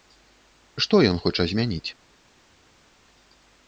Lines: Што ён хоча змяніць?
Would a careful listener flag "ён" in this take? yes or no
no